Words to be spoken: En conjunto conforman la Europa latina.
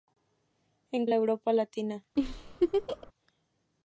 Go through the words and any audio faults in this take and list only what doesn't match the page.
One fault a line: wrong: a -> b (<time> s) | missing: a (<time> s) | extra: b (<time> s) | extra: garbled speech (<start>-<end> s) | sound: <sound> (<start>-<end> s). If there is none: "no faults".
missing: conjunto conforman (1.1 s)
sound: laugh (2.2-3.1 s)